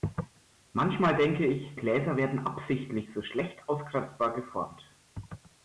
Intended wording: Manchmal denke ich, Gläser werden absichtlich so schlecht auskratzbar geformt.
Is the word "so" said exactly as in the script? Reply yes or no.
yes